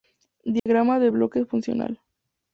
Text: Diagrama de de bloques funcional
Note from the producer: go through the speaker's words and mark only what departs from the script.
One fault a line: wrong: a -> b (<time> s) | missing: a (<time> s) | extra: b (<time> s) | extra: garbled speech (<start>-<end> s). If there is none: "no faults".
missing: de (1.1 s)